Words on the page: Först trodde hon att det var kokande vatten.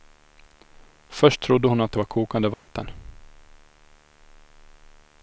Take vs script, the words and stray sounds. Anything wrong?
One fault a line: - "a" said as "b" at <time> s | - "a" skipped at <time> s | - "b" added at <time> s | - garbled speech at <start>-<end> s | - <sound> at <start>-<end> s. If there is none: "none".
- dropout at 2.5-2.7 s